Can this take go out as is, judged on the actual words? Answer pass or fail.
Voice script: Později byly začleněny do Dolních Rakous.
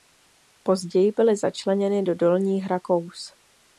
pass